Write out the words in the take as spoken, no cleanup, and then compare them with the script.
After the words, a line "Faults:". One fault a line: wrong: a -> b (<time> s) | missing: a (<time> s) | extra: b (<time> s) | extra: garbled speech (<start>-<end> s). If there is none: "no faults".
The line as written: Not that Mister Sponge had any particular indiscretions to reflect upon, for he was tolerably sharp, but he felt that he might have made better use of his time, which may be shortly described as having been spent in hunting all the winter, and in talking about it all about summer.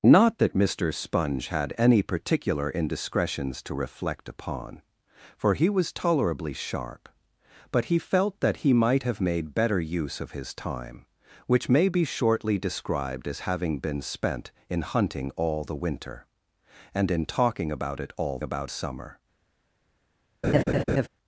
Not that Mister Sponge had any particular indiscretions to reflect upon, for he was tolerably sharp, but he felt that he might have made better use of his time, which may be shortly described as having been spent in hunting all the winter, and in talking about it all about summer.
Faults:
no faults